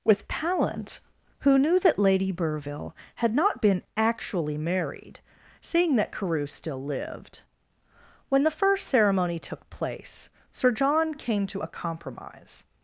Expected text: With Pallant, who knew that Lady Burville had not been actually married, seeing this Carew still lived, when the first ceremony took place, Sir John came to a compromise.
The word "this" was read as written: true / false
false